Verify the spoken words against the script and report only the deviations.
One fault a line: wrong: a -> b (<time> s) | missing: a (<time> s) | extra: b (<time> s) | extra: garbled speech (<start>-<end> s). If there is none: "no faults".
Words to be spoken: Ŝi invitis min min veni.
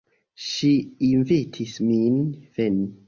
missing: min (2.2 s)